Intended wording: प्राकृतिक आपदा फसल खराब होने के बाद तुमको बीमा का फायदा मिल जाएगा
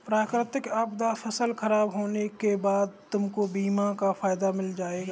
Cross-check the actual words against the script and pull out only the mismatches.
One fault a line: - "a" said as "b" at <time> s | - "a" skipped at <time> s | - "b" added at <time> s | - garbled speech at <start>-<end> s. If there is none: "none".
none